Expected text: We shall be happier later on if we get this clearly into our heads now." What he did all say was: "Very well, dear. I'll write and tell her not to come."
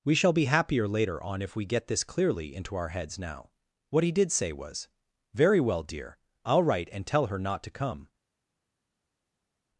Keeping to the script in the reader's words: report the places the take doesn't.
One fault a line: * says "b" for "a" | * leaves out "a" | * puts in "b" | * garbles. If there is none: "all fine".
* leaves out "all"